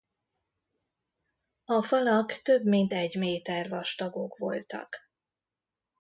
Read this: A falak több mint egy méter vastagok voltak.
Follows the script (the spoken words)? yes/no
yes